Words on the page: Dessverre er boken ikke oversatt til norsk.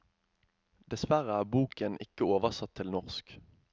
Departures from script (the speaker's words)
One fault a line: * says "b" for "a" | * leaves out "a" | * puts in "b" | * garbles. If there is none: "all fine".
all fine